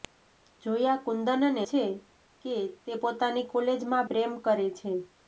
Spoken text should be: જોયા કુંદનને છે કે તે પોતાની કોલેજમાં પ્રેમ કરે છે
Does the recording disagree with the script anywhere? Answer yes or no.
no